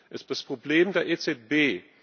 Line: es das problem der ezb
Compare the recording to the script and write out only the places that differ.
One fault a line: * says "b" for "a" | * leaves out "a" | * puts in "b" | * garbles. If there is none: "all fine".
all fine